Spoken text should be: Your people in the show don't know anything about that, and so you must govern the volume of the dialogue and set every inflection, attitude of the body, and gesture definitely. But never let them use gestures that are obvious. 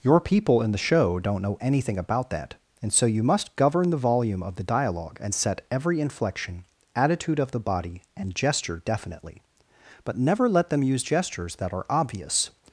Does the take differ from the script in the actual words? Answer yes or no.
no